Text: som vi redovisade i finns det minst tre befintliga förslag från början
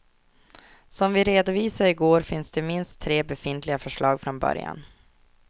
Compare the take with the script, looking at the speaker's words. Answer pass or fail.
fail